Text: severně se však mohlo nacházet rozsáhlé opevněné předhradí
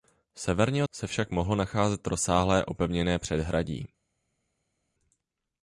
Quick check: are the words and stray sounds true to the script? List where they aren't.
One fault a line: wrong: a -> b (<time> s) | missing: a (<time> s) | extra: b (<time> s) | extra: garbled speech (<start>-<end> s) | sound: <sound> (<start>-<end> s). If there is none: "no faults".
no faults